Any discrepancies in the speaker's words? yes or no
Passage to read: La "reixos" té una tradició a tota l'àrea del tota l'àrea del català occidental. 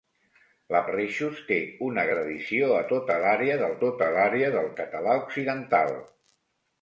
no